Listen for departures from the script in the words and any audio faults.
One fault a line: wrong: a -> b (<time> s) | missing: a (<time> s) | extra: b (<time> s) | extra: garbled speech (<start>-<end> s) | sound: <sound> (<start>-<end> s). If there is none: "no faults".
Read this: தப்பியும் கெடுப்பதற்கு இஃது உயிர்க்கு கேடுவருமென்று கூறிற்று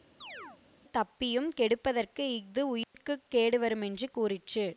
sound: chirp (0.2-0.6 s)
sound: dropout (2.8-2.9 s)